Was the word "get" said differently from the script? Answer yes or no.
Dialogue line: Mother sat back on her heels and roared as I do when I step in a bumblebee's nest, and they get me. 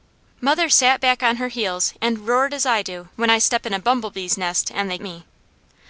yes